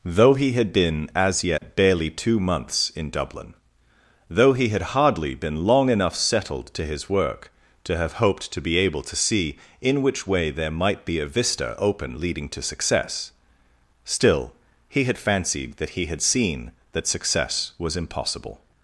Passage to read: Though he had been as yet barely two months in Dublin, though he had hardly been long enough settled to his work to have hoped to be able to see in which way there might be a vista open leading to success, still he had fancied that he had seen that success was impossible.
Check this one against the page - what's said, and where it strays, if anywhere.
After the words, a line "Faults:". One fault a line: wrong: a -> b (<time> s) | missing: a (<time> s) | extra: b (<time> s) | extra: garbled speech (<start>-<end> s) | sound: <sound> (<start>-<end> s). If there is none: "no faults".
Though he had been as yet barely two months in Dublin, though he had hardly been long enough settled to his work to have hoped to be able to see in which way there might be a vista open leading to success, still he had fancied that he had seen that success was impossible.
Faults:
sound: dropout (1.6-1.6 s)